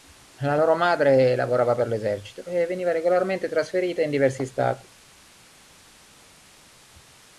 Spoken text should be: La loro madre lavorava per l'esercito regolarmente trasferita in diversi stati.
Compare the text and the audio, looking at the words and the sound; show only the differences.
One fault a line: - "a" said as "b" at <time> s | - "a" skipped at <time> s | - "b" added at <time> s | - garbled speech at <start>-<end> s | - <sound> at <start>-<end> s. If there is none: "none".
- "e veniva" added at 2.4 s